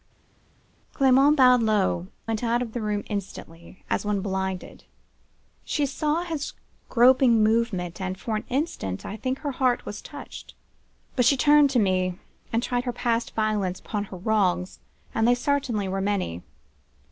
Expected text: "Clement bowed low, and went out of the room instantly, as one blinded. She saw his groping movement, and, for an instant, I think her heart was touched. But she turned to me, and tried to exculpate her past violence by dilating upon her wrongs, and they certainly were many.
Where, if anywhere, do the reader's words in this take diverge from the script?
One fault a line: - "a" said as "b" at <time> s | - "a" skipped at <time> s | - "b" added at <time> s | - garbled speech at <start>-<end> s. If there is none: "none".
- "and" skipped at 2.1 s
- "to exculpate" skipped at 12.8 s
- "by dilating" skipped at 13.8 s